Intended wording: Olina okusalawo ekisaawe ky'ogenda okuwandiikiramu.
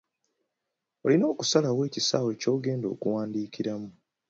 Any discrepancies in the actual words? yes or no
no